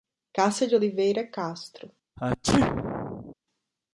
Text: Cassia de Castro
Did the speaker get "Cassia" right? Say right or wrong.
right